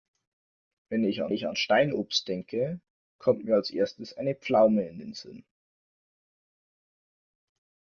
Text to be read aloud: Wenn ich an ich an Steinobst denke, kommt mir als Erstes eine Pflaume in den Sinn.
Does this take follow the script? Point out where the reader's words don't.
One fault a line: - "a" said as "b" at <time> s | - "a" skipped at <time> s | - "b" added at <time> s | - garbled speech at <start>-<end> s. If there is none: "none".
none